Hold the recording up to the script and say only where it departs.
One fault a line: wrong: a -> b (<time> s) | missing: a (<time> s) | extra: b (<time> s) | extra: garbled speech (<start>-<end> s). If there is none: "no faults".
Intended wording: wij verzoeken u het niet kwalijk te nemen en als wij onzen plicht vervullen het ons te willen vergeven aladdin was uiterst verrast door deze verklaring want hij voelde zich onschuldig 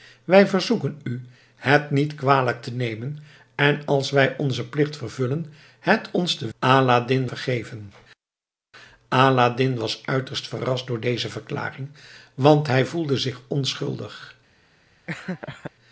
wrong: willen -> aladdin (6.6 s)